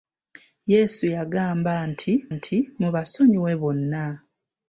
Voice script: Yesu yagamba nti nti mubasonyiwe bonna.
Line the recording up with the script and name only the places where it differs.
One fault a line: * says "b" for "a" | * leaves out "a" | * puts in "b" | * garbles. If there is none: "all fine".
all fine